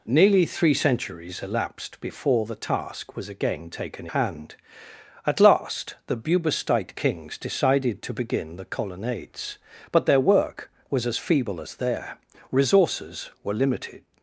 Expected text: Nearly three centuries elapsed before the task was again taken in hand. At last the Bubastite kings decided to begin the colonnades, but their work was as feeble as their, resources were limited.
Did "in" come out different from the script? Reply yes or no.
yes